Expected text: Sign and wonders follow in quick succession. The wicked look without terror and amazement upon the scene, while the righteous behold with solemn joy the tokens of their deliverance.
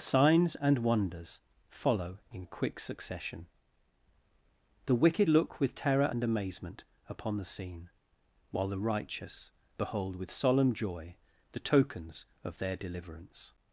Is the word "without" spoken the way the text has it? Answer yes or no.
no